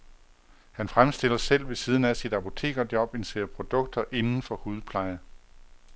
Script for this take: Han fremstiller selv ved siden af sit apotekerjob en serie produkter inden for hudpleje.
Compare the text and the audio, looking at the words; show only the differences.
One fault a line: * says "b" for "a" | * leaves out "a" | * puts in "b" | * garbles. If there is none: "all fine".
all fine